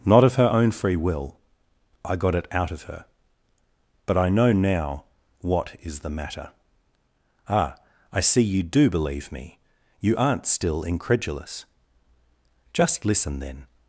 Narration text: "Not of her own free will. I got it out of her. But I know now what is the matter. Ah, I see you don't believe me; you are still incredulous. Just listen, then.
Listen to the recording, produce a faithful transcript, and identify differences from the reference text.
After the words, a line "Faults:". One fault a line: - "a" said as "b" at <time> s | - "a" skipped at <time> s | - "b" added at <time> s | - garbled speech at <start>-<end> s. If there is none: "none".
"Not of her own free will. I got it out of her. But I know now what is the matter. Ah, I see you do believe me; you aren't still incredulous. Just listen, then.
Faults:
- "don't" said as "do" at 8.6 s
- "are" said as "aren't" at 10.2 s